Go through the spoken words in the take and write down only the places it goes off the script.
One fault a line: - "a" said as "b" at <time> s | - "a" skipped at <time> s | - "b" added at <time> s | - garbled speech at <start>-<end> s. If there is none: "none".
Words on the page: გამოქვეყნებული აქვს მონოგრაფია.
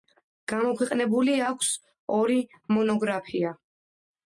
- "ორი" added at 2.2 s